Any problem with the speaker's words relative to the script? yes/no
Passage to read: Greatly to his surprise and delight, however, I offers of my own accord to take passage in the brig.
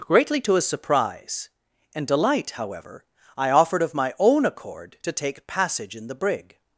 yes